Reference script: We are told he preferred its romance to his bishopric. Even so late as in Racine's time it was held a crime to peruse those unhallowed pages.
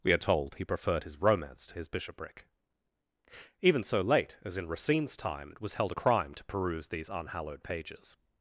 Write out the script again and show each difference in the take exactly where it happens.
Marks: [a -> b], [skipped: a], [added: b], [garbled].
We are told he preferred [its -> his] romance to his bishopric. Even so late as in Racine's time it was held a crime to peruse [those -> these] unhallowed pages.